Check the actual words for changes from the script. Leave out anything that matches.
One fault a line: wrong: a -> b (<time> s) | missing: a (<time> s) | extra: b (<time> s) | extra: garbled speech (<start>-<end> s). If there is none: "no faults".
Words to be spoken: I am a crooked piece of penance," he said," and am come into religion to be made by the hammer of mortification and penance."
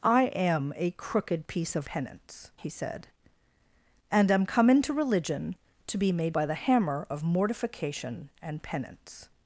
no faults